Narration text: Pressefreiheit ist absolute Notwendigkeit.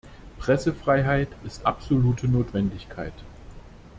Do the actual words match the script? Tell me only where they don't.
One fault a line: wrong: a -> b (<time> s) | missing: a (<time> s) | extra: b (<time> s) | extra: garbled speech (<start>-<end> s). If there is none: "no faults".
no faults